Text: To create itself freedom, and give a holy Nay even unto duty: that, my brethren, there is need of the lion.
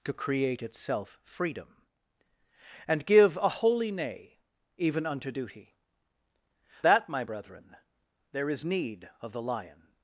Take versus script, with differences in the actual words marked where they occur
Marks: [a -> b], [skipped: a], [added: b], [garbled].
To create itself freedom, and give a holy Nay even unto duty: that, my brethren, there is need of the lion.